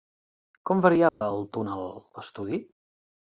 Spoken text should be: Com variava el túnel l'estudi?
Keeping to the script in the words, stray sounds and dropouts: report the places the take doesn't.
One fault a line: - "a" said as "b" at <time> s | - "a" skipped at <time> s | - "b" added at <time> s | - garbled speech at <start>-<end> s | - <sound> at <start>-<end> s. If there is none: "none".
- dropout at 1.1-1.2 s